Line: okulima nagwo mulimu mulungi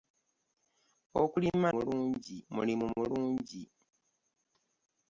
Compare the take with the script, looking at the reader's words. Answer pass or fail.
fail